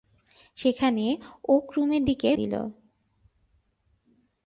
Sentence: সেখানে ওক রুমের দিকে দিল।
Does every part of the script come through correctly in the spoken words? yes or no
yes